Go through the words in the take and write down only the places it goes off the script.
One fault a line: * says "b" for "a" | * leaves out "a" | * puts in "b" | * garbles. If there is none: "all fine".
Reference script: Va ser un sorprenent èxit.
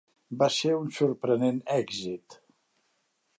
all fine